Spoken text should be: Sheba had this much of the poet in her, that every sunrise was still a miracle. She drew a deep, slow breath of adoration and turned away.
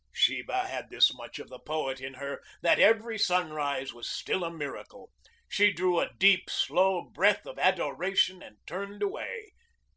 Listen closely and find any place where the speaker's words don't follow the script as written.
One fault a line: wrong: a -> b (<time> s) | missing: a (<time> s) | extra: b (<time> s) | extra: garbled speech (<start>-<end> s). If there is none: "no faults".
no faults